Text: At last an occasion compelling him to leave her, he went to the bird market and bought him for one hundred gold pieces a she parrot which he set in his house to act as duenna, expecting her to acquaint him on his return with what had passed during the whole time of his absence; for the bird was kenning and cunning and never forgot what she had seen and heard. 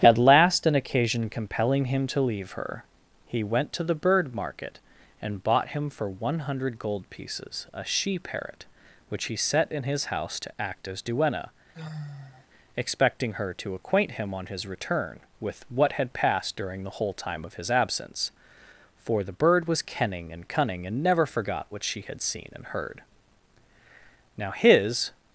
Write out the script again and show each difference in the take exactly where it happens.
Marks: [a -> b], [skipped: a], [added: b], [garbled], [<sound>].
At last an occasion compelling him to leave her, he went to the bird market and bought him for one hundred gold pieces a she parrot which he set in his house to act as duenna, [sigh] expecting her to acquaint him on his return with what had passed during the whole time of his absence; for the bird was kenning and cunning and never forgot what she had seen and heard. [added: Now his]